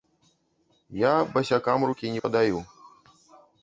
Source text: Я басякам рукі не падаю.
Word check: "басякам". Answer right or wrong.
right